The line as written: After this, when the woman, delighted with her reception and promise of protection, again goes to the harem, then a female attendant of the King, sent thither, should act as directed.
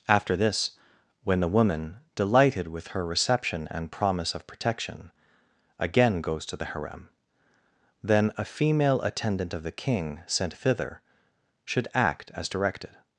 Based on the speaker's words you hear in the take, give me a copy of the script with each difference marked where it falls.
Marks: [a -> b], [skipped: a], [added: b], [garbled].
After this, when the woman, delighted with her reception and promise of protection, again goes to the harem, then a female attendant of the King, sent thither, should act as directed.